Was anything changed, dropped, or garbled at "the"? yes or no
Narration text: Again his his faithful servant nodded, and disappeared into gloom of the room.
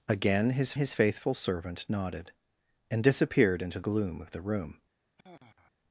no